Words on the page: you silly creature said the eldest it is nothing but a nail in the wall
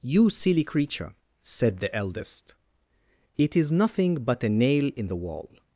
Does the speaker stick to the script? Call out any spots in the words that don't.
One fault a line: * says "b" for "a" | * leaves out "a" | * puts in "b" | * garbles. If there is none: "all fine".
all fine